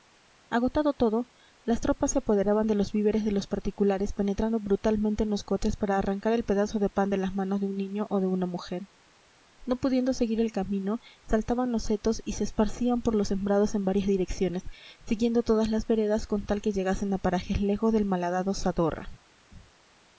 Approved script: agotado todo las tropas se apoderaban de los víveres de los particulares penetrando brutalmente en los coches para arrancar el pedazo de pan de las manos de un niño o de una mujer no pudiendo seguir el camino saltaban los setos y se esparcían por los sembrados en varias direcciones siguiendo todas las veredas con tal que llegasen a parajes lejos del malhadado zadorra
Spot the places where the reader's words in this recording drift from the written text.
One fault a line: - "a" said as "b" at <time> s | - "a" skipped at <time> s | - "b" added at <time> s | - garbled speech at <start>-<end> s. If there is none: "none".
none